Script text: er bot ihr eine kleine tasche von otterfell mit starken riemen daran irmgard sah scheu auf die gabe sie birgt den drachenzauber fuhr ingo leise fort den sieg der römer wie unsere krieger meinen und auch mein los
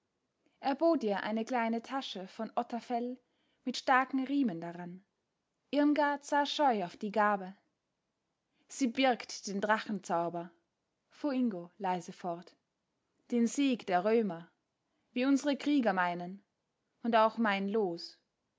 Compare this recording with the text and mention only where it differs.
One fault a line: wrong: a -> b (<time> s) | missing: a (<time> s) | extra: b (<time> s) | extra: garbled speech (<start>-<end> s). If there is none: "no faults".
no faults